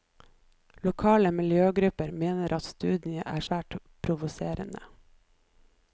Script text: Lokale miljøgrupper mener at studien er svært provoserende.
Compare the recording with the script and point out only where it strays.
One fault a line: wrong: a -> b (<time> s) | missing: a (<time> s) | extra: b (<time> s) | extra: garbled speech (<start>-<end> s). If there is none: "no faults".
no faults